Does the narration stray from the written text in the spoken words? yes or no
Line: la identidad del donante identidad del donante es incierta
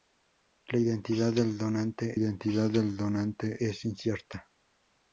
no